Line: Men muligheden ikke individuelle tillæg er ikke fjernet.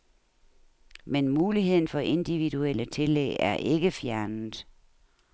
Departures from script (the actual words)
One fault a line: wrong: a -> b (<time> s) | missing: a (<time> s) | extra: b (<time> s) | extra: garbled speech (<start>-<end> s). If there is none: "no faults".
wrong: ikke -> for (1.8 s)